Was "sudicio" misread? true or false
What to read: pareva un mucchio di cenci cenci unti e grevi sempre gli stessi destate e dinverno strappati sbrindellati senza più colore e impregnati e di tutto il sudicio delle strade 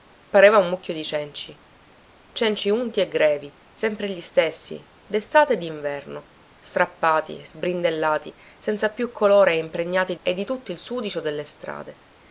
false